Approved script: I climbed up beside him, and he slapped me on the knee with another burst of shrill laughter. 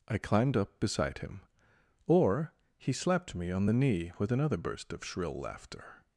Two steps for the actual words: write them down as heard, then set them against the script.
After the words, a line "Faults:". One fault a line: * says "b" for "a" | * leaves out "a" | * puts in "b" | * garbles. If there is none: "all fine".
I climbed up beside him, or he slapped me on the knee with another burst of shrill laughter.
Faults:
* says "or" for "and"